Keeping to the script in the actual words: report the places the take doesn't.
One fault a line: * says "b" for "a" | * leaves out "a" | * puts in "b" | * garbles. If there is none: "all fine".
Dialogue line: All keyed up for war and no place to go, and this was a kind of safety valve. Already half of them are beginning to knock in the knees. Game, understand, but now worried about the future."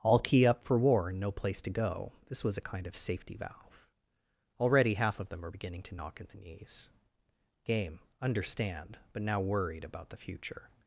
* says "key" for "keyed"
* leaves out "and"